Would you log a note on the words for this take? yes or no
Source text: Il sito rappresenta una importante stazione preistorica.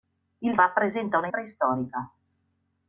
yes